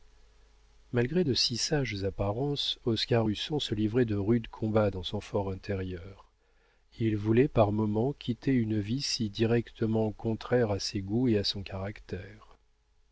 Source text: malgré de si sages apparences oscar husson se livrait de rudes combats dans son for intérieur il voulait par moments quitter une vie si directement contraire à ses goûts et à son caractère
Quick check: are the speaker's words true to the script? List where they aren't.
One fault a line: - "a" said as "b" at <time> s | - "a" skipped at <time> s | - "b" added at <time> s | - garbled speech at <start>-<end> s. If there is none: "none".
none